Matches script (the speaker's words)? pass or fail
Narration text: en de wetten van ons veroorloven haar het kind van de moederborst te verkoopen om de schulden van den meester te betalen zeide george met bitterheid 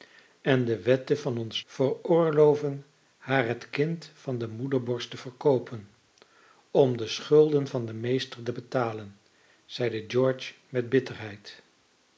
pass